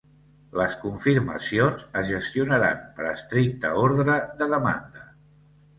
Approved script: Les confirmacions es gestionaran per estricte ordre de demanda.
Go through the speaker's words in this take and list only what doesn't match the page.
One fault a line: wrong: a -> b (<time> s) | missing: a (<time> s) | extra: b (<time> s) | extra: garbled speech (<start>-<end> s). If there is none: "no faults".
no faults